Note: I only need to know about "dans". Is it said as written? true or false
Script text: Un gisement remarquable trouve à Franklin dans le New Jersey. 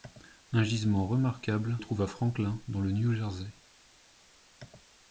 true